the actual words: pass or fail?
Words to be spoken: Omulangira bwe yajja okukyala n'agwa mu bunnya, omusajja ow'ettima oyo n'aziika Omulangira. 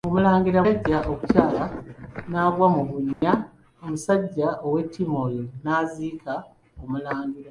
fail